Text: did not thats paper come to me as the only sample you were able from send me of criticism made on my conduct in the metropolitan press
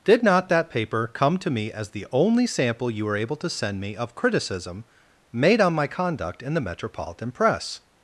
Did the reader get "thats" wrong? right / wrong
wrong